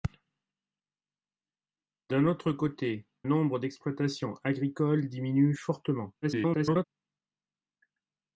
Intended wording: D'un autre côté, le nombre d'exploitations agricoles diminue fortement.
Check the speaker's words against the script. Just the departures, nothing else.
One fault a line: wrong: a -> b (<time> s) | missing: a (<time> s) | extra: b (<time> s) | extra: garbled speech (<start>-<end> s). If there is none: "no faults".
missing: le (3.0 s)
extra: garbled speech (6.2-6.8 s)